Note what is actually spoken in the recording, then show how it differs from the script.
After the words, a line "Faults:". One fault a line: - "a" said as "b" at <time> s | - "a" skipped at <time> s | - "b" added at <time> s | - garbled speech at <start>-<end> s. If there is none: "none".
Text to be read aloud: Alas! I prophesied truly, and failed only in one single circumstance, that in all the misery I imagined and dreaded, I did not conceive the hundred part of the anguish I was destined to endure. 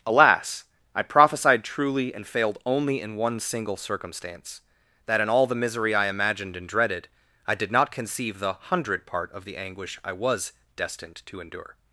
Alas! I prophesied truly, and failed only in one single circumstance, that in all the misery I imagined and dreaded, I did not conceive the hundred part of the anguish I was destined to endure.
Faults:
none